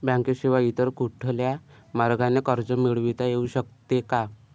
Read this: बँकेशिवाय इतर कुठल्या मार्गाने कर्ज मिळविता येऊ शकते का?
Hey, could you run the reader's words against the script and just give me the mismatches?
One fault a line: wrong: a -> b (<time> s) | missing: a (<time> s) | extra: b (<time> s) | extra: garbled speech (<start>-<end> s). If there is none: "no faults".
no faults